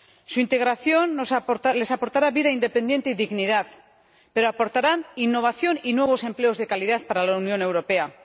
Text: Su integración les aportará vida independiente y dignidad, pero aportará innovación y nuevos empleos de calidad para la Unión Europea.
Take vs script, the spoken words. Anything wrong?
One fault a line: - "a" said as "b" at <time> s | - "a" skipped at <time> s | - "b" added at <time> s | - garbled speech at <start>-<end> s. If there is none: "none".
none